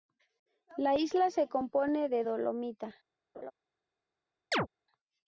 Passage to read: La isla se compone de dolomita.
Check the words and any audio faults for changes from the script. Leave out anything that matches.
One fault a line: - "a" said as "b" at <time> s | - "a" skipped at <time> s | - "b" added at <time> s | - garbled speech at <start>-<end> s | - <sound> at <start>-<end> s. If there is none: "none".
- laugh at 3.3-3.5 s
- chirp at 4.5-4.7 s